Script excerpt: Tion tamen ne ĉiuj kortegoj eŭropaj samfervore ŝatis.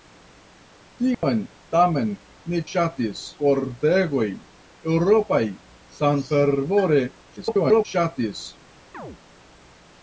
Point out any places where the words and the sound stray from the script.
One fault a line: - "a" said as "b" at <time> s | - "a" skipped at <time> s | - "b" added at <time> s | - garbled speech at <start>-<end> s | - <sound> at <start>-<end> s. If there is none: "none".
- dropout at 1.1-1.2 s
- "ĉiuj" said as "ŝatis" at 2.7 s
- garbled speech at 7.4-7.9 s
- chirp at 8.9-9.2 s